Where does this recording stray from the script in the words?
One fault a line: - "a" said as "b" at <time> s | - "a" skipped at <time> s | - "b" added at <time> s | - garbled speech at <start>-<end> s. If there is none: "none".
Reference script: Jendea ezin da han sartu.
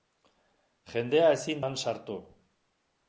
- "da" skipped at 1.6 s